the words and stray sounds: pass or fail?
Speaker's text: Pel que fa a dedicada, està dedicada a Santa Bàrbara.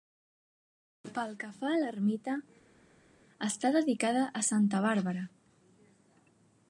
fail